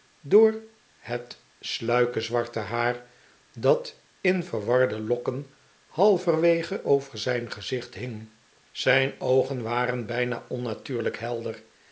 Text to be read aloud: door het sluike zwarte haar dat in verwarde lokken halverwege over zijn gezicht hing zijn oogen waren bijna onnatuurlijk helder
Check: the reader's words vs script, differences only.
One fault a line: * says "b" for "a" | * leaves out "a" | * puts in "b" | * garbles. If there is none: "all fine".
all fine